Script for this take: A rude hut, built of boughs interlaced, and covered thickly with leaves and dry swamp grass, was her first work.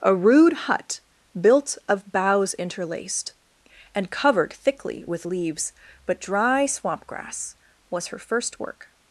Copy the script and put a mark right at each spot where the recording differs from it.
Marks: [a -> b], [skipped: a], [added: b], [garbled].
A rude hut, built of boughs interlaced, and covered thickly with leaves [and -> but] dry swamp grass, was her first work.